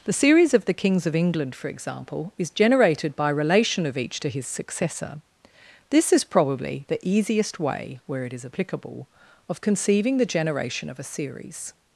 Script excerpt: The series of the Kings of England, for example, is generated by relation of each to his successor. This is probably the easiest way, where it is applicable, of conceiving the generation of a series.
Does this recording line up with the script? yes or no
yes